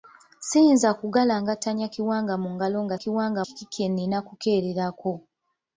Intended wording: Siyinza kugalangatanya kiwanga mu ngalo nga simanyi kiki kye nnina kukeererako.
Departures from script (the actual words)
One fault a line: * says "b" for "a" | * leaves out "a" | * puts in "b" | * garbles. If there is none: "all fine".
* says "kiwanga" for "simanyi"